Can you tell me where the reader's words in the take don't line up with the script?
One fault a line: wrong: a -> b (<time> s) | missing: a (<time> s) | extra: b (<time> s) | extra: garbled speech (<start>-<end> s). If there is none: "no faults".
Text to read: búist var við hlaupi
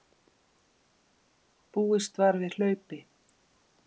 no faults